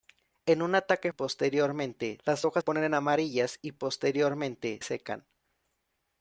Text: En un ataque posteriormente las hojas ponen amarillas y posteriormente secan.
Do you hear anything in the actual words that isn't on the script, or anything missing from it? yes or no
no